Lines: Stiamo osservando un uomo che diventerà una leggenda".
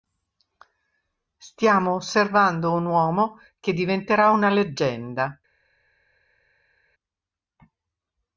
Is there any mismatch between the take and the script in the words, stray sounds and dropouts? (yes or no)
no